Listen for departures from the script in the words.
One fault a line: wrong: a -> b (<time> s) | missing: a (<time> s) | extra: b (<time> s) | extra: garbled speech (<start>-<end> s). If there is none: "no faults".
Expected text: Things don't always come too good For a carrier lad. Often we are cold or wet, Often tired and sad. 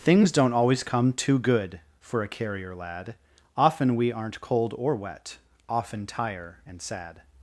wrong: are -> aren't (4.1 s)
wrong: tired -> tire (6.1 s)